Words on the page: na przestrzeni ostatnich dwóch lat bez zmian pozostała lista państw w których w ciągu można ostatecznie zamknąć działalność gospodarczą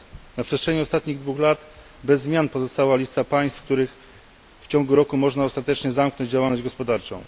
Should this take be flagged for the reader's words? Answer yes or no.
yes